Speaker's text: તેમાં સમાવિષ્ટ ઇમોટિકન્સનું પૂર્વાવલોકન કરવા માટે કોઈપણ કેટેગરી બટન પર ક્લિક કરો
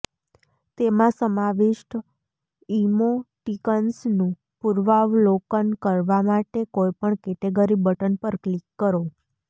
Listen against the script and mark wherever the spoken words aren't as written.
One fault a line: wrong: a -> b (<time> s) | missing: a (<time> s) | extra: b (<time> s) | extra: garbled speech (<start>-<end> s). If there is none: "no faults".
no faults